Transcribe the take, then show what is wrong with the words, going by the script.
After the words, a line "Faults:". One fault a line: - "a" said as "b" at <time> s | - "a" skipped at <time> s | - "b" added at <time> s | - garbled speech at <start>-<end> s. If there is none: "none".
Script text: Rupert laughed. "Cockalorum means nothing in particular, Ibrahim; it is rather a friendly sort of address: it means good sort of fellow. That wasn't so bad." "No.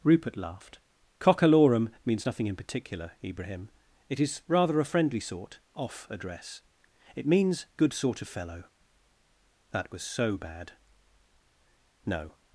Rupert laughed. "Cockalorum means nothing in particular, Ibrahim; it is rather a friendly sort off address: it means good sort of fellow. That was so bad." "No.
Faults:
- "of" said as "off" at 5.8 s
- "wasn't" said as "was" at 9.9 s